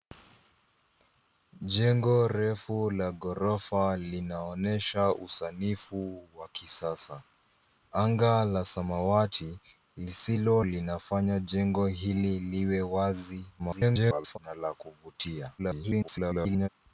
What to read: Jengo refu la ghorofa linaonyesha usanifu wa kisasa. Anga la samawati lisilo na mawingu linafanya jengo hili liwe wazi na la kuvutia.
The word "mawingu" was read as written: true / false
false